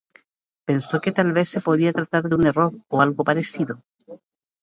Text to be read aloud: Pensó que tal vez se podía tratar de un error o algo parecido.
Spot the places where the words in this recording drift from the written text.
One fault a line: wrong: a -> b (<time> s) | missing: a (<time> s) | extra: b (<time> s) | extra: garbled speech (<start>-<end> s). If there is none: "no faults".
no faults